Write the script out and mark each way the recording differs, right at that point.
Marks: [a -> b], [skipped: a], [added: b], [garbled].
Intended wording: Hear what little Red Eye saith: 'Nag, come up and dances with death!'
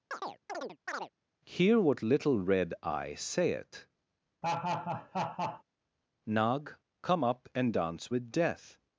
Hear what little Red Eye saith: 'Nag, come up and [dances -> dance] with death!'